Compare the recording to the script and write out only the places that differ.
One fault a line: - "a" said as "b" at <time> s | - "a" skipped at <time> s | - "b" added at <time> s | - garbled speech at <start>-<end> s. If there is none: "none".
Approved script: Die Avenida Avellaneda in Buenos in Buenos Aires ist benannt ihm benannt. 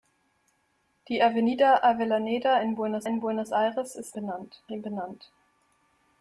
none